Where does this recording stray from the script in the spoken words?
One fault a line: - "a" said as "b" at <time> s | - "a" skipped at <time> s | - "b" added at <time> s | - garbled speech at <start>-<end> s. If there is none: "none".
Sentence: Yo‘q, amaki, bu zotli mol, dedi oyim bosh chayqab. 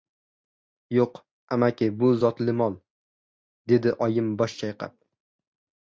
none